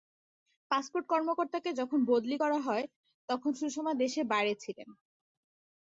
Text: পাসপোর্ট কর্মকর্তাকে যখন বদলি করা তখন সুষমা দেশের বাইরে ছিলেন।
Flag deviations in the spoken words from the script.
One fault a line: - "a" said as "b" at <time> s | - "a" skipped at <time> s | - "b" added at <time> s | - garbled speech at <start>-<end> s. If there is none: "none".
- "হয়" added at 2.6 s